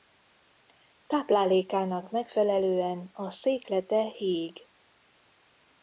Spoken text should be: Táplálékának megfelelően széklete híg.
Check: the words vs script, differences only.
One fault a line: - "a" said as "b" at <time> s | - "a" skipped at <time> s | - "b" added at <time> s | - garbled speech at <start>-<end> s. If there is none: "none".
- "a" added at 3.1 s